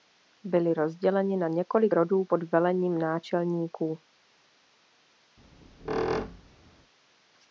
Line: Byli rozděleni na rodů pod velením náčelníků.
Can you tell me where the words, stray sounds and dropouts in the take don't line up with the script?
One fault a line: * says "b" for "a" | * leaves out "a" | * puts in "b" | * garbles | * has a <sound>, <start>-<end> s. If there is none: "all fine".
* puts in "několik"
* has a squeak, 5.4-6.9 s